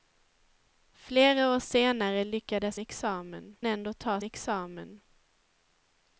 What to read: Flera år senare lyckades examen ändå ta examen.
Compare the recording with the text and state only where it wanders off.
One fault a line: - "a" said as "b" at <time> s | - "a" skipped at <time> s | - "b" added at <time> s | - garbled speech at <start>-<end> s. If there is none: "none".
none